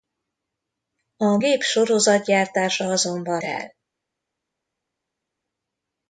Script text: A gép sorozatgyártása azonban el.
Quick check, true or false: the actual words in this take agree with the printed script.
true